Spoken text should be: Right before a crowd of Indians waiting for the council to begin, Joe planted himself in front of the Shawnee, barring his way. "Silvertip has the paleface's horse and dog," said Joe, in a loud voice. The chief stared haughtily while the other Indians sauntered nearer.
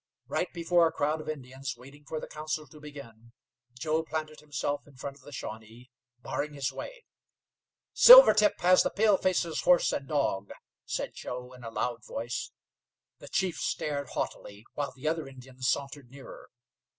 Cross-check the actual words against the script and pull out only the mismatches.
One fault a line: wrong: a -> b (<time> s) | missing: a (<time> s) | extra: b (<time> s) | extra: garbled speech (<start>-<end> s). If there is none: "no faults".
no faults